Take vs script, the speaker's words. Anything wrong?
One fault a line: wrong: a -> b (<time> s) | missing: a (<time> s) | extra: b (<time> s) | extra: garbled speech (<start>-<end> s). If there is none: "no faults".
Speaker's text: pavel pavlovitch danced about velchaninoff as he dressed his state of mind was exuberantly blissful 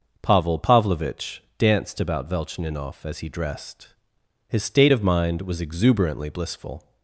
no faults